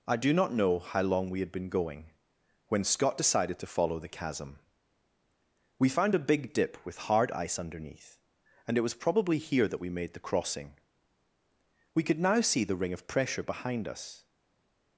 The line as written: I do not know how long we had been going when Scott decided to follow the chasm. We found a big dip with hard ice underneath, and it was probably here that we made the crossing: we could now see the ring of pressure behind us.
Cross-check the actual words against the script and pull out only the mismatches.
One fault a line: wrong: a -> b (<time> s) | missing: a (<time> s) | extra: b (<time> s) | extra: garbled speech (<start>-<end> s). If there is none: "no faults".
no faults